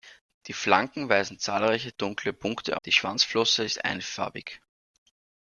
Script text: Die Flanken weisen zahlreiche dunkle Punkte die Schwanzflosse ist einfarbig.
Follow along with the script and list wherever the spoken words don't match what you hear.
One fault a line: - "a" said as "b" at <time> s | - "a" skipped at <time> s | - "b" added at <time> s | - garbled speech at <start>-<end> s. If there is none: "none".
none